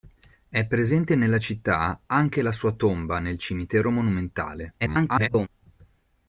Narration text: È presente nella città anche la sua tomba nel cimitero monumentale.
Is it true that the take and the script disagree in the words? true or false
true